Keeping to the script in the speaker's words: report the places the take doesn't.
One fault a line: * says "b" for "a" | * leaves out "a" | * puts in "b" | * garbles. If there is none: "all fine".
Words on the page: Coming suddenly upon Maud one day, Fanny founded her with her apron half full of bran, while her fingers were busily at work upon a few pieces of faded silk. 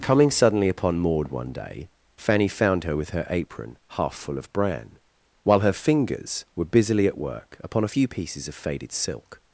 * says "found" for "founded"